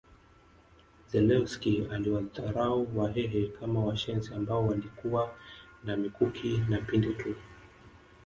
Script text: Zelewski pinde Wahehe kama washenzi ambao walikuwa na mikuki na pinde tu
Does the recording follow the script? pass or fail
fail